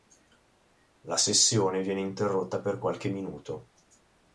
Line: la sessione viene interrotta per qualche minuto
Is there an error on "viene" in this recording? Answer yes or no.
no